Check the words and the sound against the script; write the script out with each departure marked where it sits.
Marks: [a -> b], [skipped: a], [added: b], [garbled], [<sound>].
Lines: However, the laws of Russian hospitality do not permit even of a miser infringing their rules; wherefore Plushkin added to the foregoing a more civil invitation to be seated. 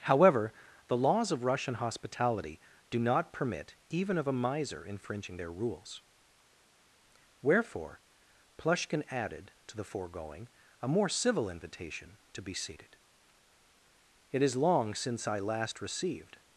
However, the laws of Russian hospitality do not permit even of a miser infringing their rules; wherefore Plushkin added to the foregoing a more civil invitation to be seated. [added: It is long since I last received]